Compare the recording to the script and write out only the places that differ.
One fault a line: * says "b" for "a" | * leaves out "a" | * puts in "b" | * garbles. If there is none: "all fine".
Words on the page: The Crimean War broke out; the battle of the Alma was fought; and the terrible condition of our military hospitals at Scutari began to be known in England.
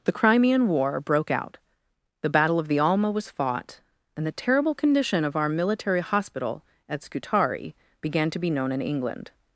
* says "hospital" for "hospitals"